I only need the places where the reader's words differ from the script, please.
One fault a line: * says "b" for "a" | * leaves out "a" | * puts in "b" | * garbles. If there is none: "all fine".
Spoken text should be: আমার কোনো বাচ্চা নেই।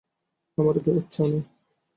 * leaves out "কোনো"